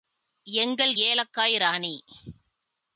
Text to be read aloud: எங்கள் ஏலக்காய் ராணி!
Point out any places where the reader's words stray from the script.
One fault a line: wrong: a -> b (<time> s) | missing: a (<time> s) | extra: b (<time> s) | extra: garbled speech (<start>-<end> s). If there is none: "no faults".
no faults